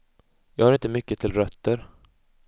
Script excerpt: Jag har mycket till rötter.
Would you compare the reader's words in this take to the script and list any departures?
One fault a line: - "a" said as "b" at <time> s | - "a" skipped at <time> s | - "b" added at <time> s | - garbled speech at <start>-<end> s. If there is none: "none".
- "inte" added at 0.7 s